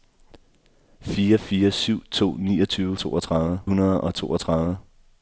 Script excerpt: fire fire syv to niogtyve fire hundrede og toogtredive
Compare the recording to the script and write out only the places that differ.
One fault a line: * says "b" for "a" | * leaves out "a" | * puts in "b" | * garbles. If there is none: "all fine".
* says "toogtredive" for "fire"